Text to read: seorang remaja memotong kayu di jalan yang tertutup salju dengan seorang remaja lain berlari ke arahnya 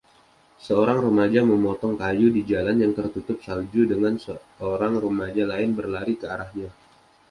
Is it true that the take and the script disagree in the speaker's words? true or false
false